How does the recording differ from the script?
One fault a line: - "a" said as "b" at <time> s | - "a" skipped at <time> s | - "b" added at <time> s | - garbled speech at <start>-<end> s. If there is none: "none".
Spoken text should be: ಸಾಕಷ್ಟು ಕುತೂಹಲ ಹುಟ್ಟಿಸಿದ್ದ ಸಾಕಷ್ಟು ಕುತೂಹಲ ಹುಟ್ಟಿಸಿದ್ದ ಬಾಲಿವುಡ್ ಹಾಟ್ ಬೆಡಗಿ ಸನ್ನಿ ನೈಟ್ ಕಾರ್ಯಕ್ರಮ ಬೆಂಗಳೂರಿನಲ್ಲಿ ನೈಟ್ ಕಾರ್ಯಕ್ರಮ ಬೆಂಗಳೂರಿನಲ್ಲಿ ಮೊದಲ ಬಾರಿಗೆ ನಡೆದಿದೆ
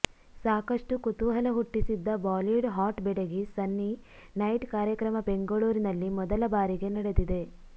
- "ಸಾಕಷ್ಟು ಕುತೂಹಲ ಹುಟ್ಟಿಸಿದ್ದ" skipped at 2.1 s
- "ನೈಟ್ ಕಾರ್ಯಕ್ರಮ ಬೆಂಗಳೂರಿನಲ್ಲಿ" skipped at 6.1 s